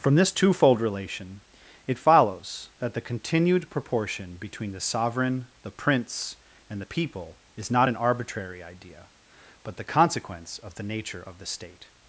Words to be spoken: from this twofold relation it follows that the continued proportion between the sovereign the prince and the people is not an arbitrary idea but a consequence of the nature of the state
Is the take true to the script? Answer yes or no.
no